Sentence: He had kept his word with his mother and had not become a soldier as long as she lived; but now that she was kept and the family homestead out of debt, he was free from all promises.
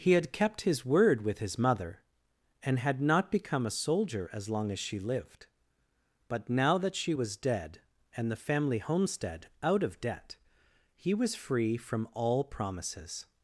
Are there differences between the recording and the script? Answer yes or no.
yes